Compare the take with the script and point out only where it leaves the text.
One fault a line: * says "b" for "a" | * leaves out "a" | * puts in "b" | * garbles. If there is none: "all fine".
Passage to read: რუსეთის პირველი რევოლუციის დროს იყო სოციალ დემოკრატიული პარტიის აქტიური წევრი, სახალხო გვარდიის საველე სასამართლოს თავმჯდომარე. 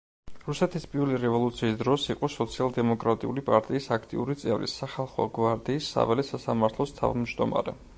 all fine